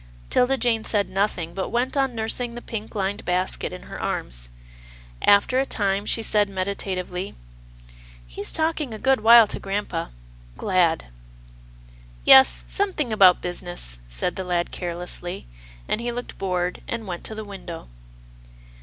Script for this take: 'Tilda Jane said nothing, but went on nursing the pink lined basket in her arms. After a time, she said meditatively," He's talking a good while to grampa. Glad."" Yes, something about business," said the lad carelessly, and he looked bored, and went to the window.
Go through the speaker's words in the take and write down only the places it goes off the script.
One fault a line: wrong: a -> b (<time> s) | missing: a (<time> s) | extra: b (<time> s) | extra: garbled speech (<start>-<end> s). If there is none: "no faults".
no faults